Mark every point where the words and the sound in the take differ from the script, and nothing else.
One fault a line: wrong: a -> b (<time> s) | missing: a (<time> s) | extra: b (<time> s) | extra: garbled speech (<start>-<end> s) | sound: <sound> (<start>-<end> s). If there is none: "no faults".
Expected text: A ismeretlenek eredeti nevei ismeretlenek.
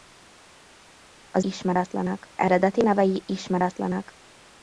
no faults